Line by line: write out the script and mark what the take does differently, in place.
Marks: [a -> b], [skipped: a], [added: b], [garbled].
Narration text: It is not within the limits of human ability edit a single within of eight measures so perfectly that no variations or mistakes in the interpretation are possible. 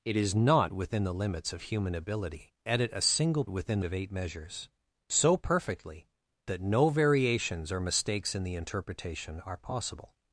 It is not within the limits of human ability edit a single within of eight measures so perfectly that no variations or mistakes in the interpretation are possible.